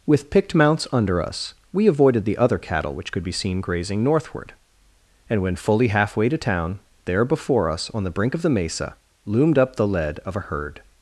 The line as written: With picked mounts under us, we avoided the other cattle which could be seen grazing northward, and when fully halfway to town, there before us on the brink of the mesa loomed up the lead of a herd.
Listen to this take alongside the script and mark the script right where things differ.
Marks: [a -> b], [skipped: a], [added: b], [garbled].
With picked mounts under us, we avoided the other cattle which could be seen grazing northward, and when fully halfway to town, there before us on the brink of the mesa loomed up the lead of a herd.